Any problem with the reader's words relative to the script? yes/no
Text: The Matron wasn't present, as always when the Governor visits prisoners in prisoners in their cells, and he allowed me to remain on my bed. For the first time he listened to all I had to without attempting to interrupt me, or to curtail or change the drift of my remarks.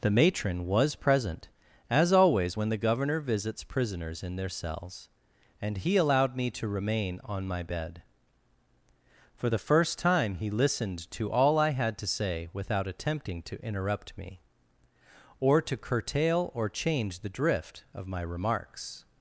yes